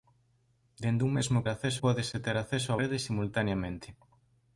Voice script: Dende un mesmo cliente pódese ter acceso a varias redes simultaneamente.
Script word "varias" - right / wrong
wrong